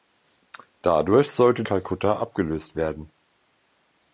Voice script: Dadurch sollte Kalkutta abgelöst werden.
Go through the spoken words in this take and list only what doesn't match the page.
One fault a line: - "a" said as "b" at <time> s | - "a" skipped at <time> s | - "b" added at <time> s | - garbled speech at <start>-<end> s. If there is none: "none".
none